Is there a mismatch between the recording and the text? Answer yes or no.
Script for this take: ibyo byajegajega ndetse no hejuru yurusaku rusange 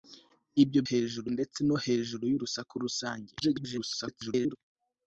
yes